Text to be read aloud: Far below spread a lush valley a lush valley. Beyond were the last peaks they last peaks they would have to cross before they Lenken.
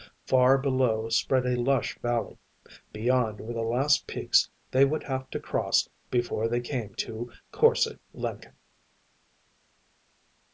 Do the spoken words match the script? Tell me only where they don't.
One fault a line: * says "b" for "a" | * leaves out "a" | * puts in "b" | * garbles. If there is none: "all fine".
* leaves out "a lush valley"
* leaves out "last peaks they"
* puts in "came to Korse"